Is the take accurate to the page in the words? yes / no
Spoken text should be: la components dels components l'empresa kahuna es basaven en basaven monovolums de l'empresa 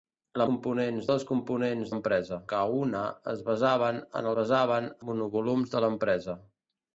yes